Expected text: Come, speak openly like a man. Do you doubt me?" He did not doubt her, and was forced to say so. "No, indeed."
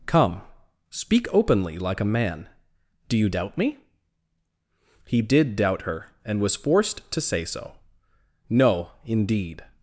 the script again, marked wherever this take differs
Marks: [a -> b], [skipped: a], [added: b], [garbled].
Come, speak openly like a man. Do you doubt me?" He did [skipped: not] doubt her, and was forced to say so. "No, indeed."